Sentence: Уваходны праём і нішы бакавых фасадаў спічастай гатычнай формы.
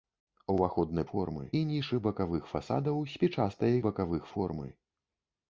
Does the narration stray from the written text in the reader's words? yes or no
yes